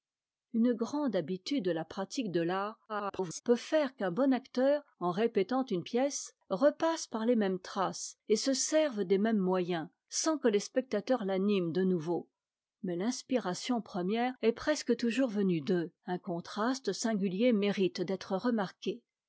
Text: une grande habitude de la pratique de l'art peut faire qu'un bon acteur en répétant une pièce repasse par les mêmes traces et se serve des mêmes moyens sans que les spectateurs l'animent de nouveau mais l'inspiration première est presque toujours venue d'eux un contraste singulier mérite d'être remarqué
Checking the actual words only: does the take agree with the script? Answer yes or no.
no